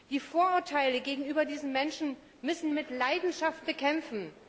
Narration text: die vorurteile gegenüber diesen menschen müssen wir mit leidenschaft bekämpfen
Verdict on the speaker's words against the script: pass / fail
fail